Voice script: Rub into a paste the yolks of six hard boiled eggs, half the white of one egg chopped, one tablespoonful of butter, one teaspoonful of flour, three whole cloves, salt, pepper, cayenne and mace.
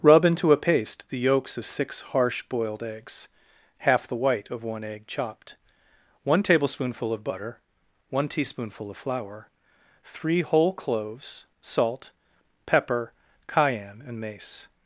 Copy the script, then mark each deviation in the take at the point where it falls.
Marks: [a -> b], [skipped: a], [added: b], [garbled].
Rub into a paste the yolks of six [hard -> harsh] boiled eggs, half the white of one egg chopped, one tablespoonful of butter, one teaspoonful of flour, three whole cloves, salt, pepper, cayenne and mace.